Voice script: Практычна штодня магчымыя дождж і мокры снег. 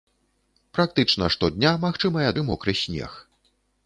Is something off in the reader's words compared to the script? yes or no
yes